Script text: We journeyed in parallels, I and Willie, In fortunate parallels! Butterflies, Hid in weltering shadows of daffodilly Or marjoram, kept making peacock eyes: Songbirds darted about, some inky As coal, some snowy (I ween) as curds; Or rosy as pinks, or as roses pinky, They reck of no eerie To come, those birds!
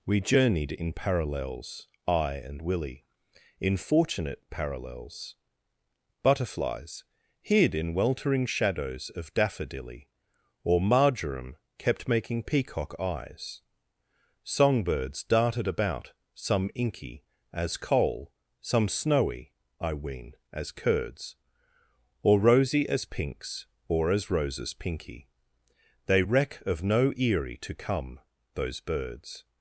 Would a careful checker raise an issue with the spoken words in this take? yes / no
no